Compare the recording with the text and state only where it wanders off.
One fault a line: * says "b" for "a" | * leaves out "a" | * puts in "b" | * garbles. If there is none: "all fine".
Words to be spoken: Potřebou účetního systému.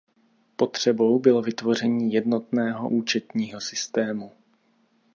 * puts in "bylo vytvoření jednotného"